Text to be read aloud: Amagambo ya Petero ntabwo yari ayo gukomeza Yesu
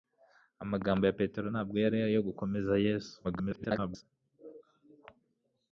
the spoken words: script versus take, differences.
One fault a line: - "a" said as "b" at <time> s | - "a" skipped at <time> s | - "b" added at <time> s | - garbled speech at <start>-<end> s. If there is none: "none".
- garbled speech at 3.2-4.0 s